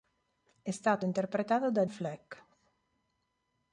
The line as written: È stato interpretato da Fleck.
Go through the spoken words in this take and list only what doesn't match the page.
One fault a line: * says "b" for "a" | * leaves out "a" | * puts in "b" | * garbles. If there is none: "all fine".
all fine